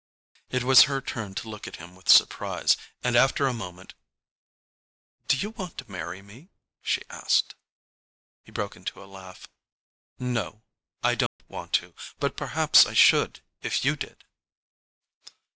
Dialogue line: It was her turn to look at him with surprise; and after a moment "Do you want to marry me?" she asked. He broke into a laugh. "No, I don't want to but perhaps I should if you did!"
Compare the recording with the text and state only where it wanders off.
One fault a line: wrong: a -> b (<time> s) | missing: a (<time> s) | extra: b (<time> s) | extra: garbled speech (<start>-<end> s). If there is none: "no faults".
no faults